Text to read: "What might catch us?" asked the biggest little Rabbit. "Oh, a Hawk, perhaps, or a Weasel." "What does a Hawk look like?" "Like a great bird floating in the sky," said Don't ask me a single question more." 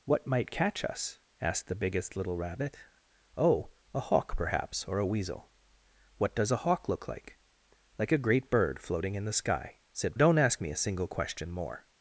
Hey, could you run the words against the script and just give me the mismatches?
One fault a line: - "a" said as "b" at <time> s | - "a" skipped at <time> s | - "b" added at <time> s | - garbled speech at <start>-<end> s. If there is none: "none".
none